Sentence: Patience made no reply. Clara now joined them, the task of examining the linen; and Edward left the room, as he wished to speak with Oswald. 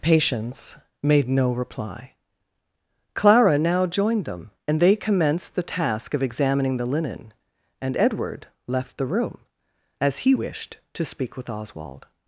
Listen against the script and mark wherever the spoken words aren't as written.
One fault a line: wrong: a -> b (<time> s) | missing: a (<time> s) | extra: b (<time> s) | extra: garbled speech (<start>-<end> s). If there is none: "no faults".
extra: and they commenced (4.7 s)